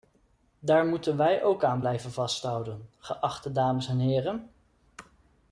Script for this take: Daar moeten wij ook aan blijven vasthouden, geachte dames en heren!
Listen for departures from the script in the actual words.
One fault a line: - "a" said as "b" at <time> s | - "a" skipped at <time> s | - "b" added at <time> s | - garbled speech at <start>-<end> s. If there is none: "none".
none